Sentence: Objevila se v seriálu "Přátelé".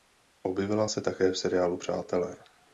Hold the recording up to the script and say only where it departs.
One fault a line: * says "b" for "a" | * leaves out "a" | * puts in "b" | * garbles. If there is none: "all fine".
* puts in "také"